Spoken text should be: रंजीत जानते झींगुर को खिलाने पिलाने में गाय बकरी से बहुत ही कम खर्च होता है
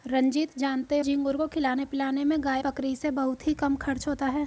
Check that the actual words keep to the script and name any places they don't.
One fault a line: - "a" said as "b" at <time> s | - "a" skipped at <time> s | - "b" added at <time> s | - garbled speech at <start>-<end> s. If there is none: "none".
none